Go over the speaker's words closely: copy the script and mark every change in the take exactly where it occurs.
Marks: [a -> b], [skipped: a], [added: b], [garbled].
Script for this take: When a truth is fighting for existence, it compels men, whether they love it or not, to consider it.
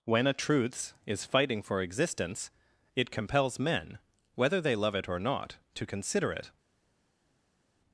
When a [truth -> truths] is fighting for existence, it compels men, whether they love it or not, to consider it.